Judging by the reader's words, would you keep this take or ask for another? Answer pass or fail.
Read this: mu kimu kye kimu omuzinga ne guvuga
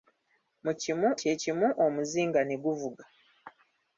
pass